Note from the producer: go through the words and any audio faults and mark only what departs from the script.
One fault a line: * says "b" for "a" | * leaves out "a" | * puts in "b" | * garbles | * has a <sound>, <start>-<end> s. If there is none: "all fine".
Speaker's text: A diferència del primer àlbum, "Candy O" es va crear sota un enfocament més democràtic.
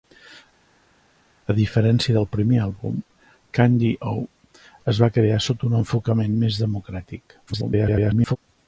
* garbles